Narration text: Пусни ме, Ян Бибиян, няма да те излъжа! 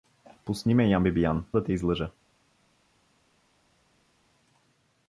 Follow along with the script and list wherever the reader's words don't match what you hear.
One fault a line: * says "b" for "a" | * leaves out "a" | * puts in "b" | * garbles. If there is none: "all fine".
* leaves out "няма"